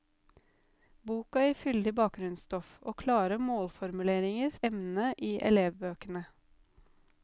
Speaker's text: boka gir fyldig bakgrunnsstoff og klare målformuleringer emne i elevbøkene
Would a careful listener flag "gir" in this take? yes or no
no